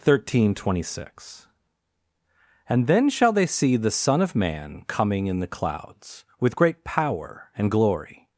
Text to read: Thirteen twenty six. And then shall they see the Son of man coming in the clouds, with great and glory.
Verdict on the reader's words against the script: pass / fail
fail